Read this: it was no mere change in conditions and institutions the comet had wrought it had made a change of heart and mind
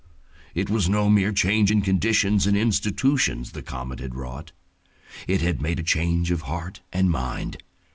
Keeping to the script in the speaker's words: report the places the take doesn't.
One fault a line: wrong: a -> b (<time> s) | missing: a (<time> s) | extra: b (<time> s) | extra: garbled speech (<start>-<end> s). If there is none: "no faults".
no faults